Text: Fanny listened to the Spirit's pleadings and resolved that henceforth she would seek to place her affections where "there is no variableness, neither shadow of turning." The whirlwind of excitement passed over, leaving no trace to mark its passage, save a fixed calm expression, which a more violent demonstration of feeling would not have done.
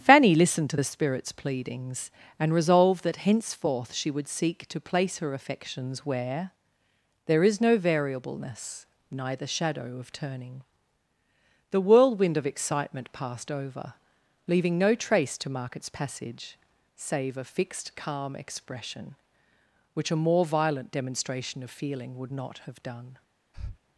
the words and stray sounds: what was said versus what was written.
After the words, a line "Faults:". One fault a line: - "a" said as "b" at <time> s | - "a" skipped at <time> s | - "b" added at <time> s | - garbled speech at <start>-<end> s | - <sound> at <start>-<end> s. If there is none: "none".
Fanny listened to the Spirit's pleadings and resolved that henceforth she would seek to place her affections where "there is no variableness, neither shadow of turning." The whirlwind of excitement passed over, leaving no trace to mark its passage, save a fixed calm expression, which a more violent demonstration of feeling would not have done.
Faults:
- breath at 23.5-23.8 s